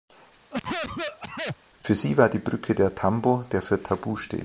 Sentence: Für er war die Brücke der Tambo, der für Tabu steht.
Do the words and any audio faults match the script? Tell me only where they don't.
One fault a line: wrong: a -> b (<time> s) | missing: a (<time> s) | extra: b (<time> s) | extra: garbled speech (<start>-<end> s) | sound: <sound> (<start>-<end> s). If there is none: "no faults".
sound: cough (0.5-1.6 s)
wrong: er -> sie (2.0 s)